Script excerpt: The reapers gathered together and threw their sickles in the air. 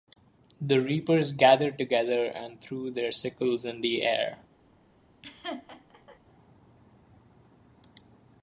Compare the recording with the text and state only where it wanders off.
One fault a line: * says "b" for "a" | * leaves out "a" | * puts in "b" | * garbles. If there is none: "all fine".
all fine